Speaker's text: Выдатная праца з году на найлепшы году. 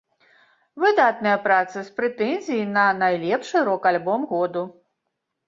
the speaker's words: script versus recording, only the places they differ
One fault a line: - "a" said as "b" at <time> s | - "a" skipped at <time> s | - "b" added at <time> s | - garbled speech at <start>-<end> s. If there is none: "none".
- "году" said as "прэтэнзіяй" at 2.0 s
- "рок альбом" added at 3.7 s